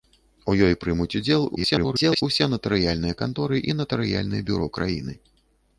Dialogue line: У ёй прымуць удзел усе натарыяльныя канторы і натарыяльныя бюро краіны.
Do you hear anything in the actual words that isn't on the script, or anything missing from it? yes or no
yes